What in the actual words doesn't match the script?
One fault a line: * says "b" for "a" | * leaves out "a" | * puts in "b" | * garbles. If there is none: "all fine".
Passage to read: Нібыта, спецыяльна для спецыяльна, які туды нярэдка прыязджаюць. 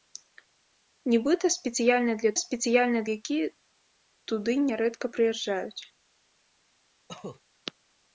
all fine